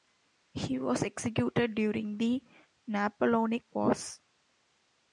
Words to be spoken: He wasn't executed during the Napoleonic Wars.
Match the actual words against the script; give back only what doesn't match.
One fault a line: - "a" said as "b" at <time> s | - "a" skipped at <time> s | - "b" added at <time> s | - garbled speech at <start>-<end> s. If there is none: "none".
- "wasn't" said as "was" at 0.8 s